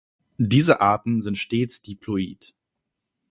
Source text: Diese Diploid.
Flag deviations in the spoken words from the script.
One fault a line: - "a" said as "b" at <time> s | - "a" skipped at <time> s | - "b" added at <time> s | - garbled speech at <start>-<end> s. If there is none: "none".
- "Arten sind stets" added at 0.8 s